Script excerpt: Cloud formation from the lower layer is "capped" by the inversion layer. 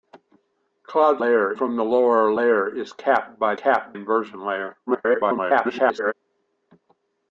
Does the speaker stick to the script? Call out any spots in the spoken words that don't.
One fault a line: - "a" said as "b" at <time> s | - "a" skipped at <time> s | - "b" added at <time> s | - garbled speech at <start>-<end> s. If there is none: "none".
- "formation" said as "layer" at 1.2 s
- "the" said as "capped" at 3.5 s
- garbled speech at 4.9-6.1 s